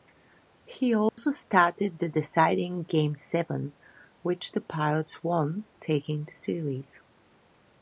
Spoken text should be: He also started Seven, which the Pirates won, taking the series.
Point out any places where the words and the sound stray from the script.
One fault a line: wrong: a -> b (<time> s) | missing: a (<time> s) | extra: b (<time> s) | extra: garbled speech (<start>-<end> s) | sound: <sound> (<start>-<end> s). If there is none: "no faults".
sound: dropout (1.1-1.2 s)
extra: the deciding Game (2.0 s)